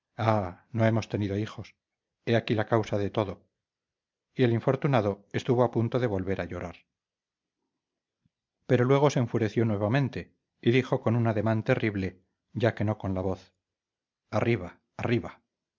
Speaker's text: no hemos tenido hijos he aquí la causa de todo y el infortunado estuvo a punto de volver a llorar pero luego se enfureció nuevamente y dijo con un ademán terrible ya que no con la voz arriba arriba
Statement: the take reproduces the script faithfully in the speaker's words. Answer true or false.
true